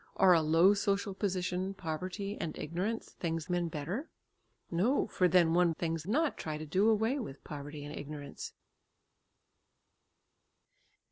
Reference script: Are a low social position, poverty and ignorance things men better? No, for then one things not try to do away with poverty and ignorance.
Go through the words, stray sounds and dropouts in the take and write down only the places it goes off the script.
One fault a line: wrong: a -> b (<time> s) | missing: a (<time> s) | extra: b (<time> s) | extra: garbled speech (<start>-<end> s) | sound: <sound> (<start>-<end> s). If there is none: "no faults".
no faults